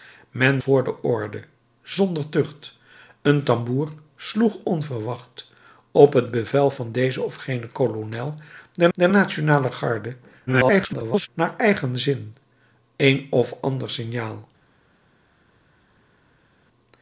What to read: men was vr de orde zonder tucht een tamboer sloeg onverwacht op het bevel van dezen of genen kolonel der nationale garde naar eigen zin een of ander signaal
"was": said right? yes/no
no